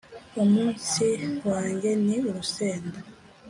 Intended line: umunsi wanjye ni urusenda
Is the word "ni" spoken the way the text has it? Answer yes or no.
yes